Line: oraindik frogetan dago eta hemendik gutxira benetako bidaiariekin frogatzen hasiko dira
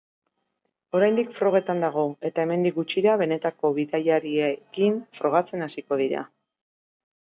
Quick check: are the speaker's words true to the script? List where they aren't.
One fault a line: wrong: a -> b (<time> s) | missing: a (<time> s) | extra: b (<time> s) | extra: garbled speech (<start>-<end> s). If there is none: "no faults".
no faults